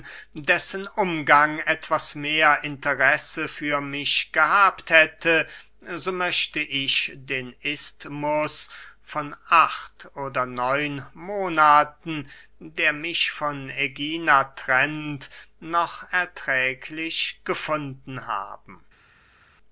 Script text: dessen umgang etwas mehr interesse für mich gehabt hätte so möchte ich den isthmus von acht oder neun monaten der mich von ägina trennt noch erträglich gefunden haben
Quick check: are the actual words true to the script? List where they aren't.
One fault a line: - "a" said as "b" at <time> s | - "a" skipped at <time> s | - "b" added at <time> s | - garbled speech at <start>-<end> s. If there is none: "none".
none